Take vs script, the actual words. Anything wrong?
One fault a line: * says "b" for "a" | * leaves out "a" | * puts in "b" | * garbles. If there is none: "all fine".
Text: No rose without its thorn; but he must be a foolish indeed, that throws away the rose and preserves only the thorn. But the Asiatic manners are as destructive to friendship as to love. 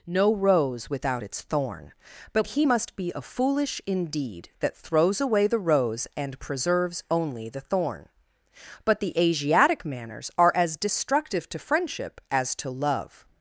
all fine